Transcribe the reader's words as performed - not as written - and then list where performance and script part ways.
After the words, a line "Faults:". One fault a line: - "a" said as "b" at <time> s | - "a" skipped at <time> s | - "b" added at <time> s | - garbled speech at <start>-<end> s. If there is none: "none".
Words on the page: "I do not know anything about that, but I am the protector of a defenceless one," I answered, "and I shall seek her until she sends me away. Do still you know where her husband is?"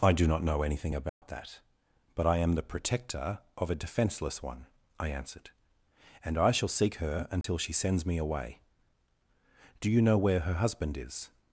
"I do not know anything about that, but I am the protector of a defenceless one," I answered, "and I shall seek her until she sends me away. Do you know where her husband is?"
Faults:
- "still" skipped at 9.9 s